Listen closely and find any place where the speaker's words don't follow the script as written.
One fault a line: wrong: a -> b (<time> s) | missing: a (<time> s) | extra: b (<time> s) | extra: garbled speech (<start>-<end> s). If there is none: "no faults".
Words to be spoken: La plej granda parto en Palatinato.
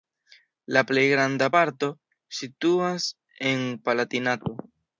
extra: situas (2.4 s)